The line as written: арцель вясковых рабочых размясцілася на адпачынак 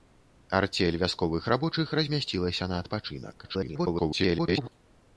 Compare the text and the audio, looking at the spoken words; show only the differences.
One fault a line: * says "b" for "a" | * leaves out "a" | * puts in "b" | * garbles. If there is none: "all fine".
* garbles